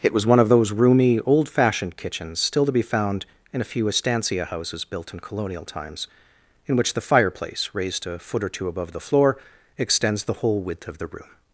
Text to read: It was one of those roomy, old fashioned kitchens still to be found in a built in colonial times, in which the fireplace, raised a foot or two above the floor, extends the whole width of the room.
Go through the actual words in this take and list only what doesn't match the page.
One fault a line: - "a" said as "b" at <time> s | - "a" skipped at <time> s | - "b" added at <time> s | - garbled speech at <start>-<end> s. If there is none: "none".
- "few estancia houses" added at 3.7 s